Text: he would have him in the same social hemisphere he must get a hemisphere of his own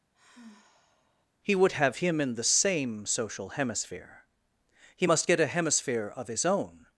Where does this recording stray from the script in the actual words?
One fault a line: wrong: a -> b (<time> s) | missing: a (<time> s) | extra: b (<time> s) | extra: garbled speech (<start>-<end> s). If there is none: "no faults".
no faults